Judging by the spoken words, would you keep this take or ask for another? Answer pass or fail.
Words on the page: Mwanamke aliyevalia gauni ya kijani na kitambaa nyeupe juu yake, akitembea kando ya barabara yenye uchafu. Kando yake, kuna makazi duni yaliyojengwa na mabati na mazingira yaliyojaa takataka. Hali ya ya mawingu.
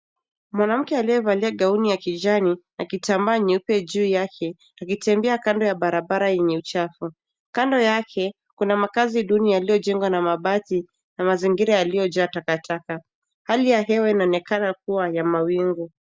fail